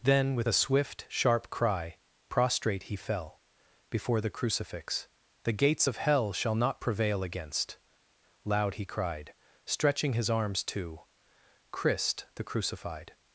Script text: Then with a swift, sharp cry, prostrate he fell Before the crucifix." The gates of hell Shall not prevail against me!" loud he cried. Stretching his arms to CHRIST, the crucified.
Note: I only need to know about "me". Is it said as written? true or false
false